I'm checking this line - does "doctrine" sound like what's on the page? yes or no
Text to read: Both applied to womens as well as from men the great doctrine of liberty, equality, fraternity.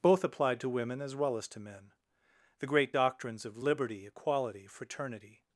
no